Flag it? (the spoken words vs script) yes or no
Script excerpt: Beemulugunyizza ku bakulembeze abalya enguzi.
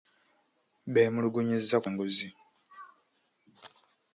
yes